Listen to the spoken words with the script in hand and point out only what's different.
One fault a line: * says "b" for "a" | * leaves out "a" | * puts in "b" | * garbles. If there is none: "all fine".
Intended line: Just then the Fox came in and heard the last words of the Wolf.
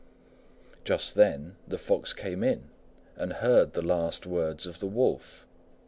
all fine